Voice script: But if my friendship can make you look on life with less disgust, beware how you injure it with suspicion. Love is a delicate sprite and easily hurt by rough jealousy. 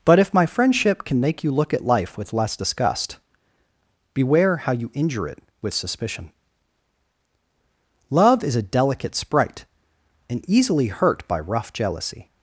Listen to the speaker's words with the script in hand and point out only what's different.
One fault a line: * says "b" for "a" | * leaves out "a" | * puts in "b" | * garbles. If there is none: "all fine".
* says "at" for "on"